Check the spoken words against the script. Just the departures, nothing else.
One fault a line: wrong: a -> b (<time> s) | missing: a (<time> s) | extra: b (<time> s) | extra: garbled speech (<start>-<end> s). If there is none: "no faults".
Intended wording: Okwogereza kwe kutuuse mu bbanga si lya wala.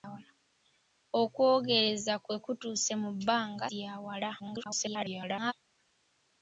missing: si (3.6 s)
extra: garbled speech (4.4-5.5 s)